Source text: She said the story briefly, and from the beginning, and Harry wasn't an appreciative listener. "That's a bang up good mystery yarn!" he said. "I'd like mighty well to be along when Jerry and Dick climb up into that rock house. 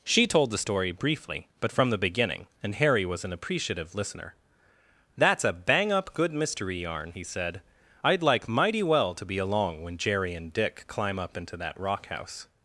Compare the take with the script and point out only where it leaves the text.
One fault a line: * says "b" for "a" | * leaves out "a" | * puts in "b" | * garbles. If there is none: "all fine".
* says "told" for "said"
* says "but" for "and"
* says "was" for "wasn't"